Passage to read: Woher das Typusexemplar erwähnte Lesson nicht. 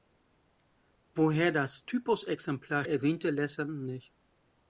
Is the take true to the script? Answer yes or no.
yes